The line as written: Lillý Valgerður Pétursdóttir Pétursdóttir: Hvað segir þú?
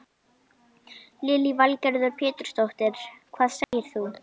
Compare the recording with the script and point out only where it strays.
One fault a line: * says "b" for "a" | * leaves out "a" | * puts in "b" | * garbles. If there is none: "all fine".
* leaves out "Pétursdóttir"